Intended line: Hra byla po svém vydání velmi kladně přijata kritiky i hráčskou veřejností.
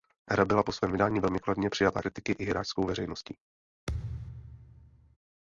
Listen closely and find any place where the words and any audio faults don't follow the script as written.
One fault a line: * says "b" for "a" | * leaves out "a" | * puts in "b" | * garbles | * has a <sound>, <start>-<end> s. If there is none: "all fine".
* has a thud, 3.9-5.2 s